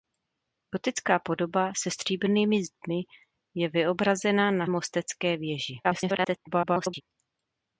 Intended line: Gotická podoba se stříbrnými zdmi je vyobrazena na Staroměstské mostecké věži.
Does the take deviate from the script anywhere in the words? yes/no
yes